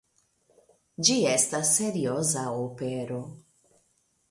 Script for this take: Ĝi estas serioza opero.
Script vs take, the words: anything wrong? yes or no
no